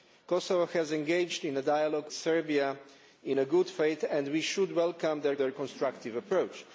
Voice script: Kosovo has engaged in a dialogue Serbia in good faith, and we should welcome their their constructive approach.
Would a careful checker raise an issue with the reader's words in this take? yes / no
no